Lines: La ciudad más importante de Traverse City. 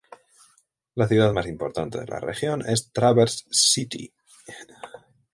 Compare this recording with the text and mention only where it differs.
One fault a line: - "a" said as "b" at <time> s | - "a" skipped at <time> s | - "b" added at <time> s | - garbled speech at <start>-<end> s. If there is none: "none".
- "la región es" added at 2.1 s